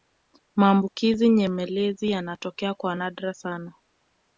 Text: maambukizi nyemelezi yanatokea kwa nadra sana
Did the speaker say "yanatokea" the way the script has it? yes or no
yes